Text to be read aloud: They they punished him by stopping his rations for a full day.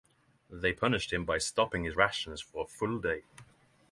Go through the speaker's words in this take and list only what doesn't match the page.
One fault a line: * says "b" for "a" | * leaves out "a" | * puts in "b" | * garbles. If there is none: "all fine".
* leaves out "they"